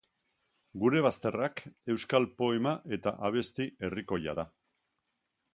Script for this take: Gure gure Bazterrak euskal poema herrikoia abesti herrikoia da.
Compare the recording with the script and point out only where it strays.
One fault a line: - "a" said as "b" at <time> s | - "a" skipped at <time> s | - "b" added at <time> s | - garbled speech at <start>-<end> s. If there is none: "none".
- "gure" skipped at 1.0 s
- "herrikoia" said as "eta" at 3.0 s